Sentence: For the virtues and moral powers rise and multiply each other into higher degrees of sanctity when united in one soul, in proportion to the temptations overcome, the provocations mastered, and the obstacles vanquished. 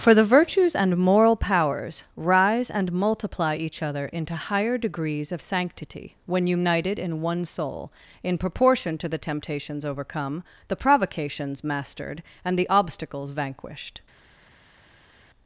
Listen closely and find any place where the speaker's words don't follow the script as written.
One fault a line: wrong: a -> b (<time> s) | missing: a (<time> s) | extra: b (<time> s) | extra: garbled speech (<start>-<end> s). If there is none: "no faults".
no faults